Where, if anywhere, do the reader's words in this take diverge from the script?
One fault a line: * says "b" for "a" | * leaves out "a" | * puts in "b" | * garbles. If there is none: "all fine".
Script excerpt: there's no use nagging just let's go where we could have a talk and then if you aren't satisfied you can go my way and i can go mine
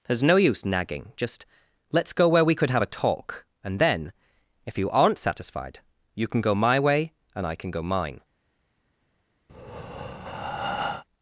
all fine